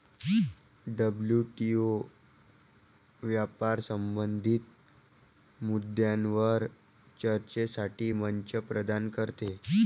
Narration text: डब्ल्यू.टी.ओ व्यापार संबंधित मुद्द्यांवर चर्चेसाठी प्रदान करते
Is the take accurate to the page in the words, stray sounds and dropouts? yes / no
no